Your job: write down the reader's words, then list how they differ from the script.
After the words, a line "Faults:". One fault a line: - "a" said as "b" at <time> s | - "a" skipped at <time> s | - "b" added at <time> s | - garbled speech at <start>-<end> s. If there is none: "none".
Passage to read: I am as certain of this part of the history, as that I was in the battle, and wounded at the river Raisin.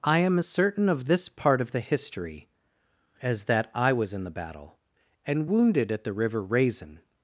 I am as certain of this part of the history, as that I was in the battle, and wounded at the river Raisin.
Faults:
none